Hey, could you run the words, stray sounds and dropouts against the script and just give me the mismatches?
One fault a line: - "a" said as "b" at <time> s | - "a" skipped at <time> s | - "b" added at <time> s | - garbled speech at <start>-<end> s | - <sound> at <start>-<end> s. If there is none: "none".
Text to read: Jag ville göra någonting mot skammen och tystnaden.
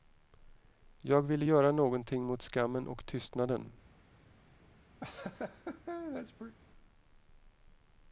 - laugh at 5.0-6.6 s